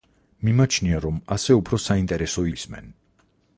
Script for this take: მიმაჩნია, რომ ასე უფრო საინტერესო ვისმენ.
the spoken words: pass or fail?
pass